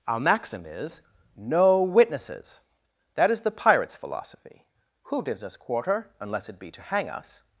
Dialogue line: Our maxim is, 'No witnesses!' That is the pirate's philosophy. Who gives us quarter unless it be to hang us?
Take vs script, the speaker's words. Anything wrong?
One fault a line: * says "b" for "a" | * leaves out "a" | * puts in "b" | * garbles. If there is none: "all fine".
all fine